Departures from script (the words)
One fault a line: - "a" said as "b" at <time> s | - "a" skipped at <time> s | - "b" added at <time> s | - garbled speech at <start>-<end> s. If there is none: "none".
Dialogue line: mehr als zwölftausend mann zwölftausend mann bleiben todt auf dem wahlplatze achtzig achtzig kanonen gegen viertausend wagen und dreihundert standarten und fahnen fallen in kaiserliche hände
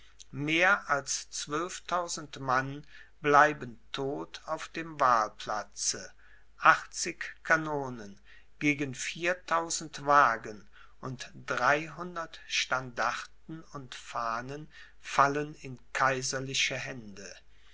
- "zwölftausend mann" skipped at 2.9 s
- "achtzig" skipped at 7.3 s